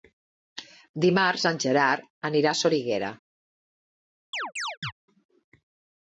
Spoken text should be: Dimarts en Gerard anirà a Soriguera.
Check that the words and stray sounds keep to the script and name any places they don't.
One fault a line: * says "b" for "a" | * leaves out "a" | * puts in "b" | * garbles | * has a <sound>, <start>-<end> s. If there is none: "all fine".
* has a chirp, 4.3-4.9 s